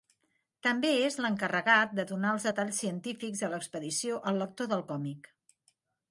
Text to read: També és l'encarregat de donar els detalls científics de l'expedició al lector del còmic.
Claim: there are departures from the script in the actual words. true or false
false